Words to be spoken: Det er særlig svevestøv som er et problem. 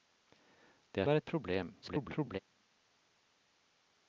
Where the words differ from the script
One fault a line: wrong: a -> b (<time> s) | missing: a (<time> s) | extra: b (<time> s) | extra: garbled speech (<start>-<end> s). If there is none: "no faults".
missing: særlig svevestøv som (1.1 s)
extra: garbled speech (1.8-2.4 s)